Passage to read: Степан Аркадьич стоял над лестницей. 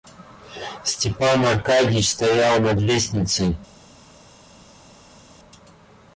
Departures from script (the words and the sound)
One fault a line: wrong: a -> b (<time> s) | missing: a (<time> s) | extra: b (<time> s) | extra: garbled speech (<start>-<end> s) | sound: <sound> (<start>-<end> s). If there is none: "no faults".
no faults